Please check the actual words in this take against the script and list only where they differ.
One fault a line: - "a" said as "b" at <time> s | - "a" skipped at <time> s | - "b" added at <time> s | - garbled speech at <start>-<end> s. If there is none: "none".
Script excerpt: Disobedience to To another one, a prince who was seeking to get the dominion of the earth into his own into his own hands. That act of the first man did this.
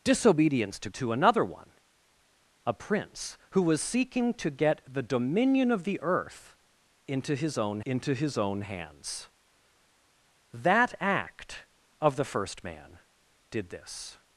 none